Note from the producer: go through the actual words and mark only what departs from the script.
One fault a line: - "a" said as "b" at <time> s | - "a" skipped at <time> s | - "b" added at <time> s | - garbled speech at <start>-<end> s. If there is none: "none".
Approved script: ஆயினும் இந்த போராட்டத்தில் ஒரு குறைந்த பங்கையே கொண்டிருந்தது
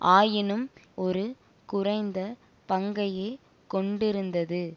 - "இந்த போராட்டத்தில்" skipped at 0.7 s